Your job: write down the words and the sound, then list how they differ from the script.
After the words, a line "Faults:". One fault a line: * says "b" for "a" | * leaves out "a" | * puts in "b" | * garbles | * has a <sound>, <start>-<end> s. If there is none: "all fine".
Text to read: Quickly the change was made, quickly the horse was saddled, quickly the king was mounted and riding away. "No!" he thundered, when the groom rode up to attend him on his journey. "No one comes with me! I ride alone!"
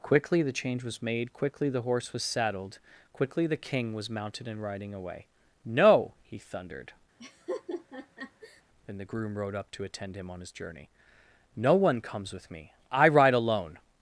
Quickly the change was made, quickly the horse was saddled, quickly the king was mounted and riding away. "No!" he thundered, and the groom rode up to attend him on his journey. "No one comes with me! I ride alone!"
Faults:
* has a laugh, 7.2-8.6 s
* says "and" for "when"